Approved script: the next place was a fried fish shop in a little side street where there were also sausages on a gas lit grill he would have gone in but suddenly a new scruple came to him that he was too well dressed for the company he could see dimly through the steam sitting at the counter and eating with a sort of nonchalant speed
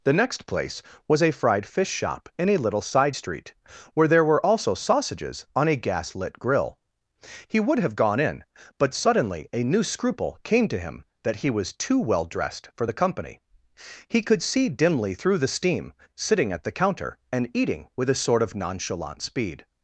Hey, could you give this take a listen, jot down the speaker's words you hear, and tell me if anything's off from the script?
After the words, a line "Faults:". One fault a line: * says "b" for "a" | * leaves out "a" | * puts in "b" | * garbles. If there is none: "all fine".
the next place was a fried fish shop in a little side street where there were also sausages on a gas lit grill he would have gone in but suddenly a new scruple came to him that he was too well dressed for the company he could see dimly through the steam sitting at the counter and eating with a sort of nonchalant speed
Faults:
all fine